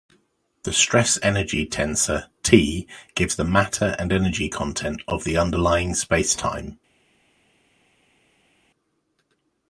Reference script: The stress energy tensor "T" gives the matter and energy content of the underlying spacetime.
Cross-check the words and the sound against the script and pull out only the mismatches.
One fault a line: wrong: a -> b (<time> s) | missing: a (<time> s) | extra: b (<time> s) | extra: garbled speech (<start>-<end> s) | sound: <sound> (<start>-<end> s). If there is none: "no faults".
no faults